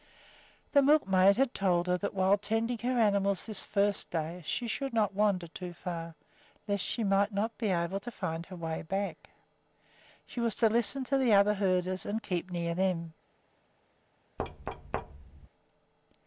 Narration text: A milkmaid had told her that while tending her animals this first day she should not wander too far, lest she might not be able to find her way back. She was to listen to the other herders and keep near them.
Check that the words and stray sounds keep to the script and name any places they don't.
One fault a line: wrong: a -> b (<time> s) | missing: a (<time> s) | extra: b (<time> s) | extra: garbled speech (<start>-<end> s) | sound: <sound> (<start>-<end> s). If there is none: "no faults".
wrong: A -> The (0.7 s)
sound: thud (14.4-15.5 s)